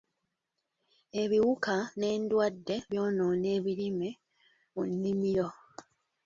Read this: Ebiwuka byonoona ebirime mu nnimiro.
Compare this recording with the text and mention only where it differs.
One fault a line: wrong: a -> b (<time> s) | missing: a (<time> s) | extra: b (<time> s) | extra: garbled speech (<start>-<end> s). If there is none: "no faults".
extra: n'endwadde (2.0 s)